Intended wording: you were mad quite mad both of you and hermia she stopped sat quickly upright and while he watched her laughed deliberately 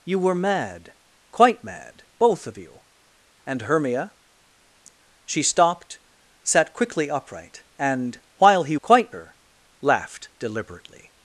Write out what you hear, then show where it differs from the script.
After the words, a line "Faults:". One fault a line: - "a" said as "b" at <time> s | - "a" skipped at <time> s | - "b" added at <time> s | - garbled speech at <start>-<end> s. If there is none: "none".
you were mad quite mad both of you and hermia she stopped sat quickly upright and while he quite her laughed deliberately
Faults:
- "watched" said as "quite" at 8.8 s